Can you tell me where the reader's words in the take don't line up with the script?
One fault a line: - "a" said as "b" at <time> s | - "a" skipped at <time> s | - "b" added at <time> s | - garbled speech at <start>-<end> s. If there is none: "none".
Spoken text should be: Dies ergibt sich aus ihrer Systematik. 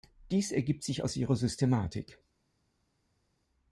none